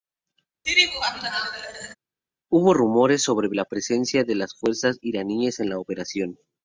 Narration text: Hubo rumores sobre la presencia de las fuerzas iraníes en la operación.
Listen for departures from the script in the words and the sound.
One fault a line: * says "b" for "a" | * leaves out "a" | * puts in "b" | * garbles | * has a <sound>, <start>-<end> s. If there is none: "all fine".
* has a laugh, 0.6-1.9 s